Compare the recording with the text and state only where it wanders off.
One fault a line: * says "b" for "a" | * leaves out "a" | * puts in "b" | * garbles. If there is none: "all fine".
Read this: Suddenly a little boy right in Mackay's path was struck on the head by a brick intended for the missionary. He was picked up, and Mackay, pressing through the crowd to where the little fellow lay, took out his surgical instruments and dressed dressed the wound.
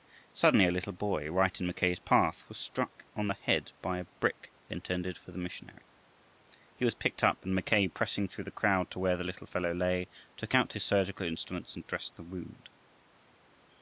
* leaves out "dressed"